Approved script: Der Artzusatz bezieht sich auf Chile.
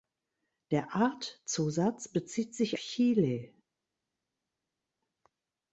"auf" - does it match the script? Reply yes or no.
no